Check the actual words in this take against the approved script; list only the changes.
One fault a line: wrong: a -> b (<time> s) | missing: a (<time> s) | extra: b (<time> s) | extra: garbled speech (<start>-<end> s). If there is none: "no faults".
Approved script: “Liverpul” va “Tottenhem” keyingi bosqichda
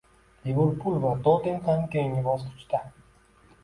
no faults